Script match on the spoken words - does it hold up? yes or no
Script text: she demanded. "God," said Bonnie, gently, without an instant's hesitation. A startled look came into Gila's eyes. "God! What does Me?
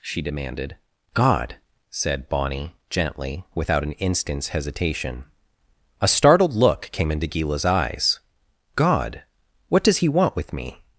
no